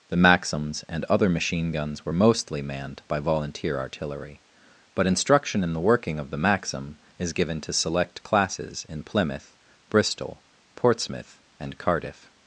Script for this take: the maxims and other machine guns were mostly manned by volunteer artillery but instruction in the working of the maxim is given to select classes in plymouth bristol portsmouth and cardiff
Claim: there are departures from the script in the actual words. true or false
false